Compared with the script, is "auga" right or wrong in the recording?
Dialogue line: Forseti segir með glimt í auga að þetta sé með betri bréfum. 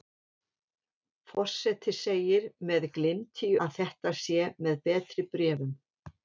wrong